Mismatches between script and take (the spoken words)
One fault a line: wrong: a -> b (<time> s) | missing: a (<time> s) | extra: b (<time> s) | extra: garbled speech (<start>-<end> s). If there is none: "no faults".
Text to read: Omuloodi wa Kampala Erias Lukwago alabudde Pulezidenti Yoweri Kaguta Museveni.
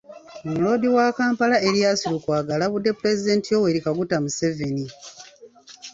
no faults